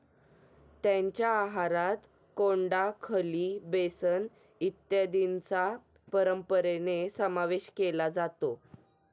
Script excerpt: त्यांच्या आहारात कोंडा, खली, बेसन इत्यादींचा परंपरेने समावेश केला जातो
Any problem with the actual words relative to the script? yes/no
no